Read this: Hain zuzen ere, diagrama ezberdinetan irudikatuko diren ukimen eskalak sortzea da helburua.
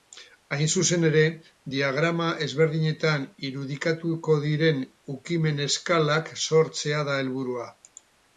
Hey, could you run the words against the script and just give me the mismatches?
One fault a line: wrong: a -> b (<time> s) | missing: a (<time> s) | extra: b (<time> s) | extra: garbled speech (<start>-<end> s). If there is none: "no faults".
no faults